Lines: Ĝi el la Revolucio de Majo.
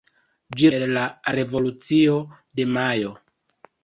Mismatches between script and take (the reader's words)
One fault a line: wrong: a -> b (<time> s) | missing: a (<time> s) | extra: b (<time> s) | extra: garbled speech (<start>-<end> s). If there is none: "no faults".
no faults